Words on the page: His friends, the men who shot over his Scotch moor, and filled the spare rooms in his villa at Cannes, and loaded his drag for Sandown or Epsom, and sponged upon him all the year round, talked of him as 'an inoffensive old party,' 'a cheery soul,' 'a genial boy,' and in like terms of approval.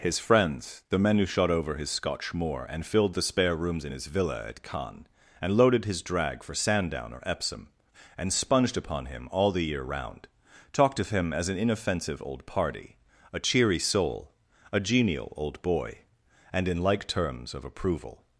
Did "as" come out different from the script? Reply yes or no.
no